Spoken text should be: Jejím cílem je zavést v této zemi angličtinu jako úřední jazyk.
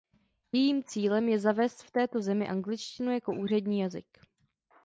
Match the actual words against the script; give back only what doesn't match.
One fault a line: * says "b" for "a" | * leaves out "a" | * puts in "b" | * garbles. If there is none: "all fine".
all fine